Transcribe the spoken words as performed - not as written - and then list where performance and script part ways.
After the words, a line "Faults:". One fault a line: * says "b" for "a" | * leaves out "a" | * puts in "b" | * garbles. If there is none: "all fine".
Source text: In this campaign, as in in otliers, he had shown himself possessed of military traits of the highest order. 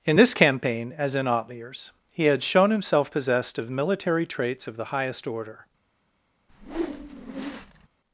In this campaign, as in otliers, he had shown himself possessed of military traits of the highest order.
Faults:
* leaves out "in"